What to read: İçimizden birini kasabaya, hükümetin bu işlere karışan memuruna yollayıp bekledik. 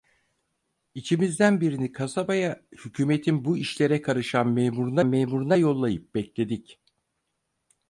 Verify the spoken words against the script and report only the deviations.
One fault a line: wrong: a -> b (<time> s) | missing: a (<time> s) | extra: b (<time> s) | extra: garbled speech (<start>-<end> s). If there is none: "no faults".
extra: memuruna (5.0 s)